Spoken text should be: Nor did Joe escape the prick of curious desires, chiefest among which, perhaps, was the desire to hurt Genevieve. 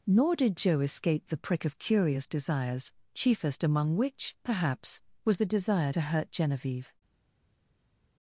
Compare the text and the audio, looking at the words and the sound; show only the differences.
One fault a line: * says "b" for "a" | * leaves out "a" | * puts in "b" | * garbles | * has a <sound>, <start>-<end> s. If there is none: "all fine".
all fine